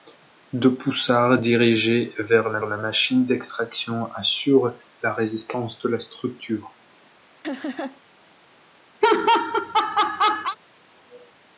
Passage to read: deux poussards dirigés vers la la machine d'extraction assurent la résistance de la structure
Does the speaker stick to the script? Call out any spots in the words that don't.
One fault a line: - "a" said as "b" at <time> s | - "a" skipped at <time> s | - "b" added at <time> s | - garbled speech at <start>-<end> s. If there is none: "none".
none